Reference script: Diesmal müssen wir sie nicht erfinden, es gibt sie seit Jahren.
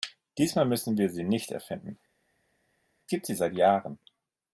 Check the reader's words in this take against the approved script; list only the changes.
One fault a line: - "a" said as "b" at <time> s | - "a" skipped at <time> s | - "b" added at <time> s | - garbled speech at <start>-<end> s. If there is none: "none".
- "es" skipped at 2.0 s